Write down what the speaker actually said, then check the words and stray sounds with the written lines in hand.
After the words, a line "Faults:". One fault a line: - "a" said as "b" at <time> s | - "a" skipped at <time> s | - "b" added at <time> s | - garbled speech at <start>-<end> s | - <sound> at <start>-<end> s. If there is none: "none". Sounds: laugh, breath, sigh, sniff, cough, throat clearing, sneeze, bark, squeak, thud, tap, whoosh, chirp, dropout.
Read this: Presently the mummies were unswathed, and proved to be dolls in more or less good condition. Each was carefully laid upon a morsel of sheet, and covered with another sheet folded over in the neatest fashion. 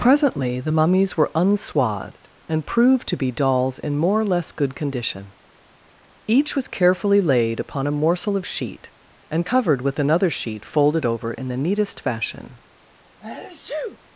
Presently the mummies were unswathed, and proved to be dolls in more or less good condition. Each was carefully laid upon a morsel of sheet, and covered with another sheet folded over in the neatest fashion.
Faults:
- sneeze at 13.2-14.0 s